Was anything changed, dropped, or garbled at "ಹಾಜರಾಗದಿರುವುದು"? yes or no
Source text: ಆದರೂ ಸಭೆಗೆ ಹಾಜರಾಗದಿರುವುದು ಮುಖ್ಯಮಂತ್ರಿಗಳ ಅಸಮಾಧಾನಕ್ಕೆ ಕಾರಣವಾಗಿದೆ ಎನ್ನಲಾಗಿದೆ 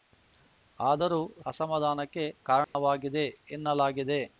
yes